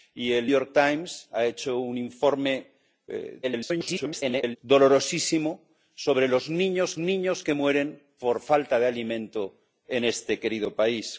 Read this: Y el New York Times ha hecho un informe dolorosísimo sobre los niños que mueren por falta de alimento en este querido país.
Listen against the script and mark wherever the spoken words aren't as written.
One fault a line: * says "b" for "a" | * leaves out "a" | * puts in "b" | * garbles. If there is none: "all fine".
* leaves out "New"
* garbles
* puts in "niños"